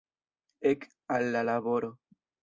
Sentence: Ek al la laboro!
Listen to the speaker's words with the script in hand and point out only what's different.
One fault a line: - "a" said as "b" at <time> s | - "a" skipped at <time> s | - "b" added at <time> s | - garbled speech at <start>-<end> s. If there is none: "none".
none